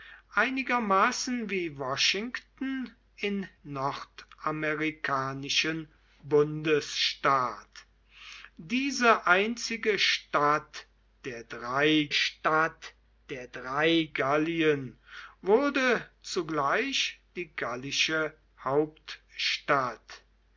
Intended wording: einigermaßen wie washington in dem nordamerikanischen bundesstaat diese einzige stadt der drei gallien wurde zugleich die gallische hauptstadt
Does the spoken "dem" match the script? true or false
false